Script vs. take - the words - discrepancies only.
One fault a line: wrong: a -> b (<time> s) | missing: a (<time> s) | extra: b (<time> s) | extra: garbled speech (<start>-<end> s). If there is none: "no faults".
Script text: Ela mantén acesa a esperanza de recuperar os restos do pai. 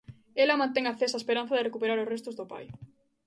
no faults